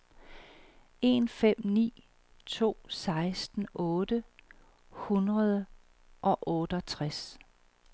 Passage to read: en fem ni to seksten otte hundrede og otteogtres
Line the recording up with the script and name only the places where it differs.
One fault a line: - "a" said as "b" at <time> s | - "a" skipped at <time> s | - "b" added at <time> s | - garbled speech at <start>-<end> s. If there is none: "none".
none